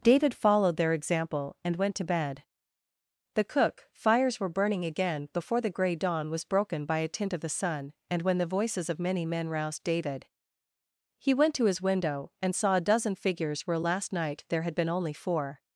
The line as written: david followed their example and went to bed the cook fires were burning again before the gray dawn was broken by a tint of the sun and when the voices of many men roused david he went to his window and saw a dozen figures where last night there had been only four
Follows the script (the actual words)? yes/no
yes